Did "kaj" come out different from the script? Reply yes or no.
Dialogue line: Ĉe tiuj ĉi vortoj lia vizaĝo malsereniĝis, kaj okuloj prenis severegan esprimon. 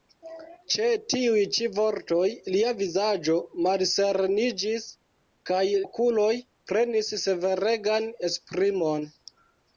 no